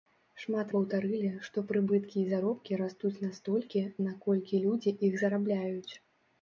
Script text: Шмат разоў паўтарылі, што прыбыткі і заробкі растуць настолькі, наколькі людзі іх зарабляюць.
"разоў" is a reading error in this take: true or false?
true